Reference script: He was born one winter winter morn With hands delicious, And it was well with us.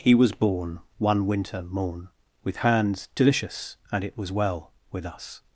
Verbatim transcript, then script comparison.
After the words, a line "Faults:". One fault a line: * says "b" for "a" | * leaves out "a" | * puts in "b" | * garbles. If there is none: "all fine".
He was born one winter morn With hands delicious, And it was well with us.
Faults:
* leaves out "winter"